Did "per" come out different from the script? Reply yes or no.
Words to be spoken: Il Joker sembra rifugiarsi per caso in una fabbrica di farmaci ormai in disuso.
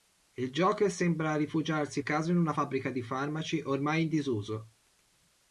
yes